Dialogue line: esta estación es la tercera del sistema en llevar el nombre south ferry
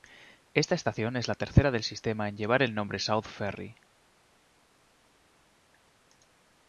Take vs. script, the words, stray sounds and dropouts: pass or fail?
pass